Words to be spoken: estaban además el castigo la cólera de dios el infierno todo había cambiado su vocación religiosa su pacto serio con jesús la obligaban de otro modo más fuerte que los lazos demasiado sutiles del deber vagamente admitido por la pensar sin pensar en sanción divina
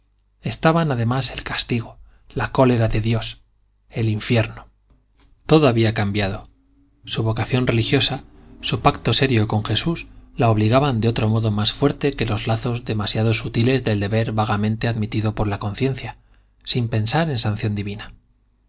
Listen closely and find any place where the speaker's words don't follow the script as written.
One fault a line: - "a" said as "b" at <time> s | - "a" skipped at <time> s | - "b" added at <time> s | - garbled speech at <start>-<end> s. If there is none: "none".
- "pensar" said as "conciencia" at 15.6 s